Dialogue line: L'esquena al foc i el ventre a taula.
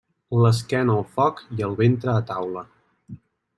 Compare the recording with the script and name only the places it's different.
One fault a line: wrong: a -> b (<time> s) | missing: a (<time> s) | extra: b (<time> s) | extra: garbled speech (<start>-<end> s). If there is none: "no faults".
no faults